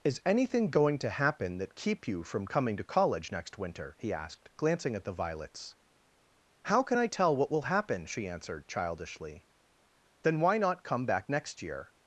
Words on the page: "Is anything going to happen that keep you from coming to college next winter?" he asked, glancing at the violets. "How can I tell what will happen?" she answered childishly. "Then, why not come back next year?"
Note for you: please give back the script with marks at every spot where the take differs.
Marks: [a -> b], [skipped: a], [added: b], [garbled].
"Is anything going to happen that keep you from coming to college next winter?" he asked, glancing at the violets. "How can I tell what will happen?" she answered childishly. "Then, why not come back next year?"